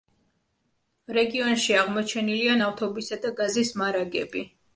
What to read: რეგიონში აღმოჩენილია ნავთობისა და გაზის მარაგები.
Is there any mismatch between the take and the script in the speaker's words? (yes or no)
no